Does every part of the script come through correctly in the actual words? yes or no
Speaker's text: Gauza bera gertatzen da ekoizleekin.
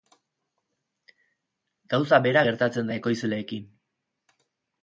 yes